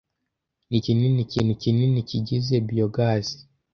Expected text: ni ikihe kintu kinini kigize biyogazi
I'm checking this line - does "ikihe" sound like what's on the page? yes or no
no